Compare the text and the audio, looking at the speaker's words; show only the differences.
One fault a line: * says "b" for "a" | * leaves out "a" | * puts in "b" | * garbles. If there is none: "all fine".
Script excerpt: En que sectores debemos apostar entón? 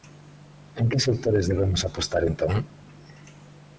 all fine